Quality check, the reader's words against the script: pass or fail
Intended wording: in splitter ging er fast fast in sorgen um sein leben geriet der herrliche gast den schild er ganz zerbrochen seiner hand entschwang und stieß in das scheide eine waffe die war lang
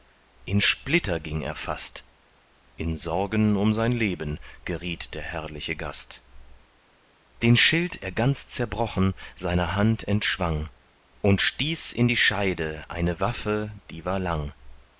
fail